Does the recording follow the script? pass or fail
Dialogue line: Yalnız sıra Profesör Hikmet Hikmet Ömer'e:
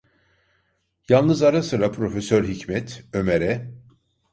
fail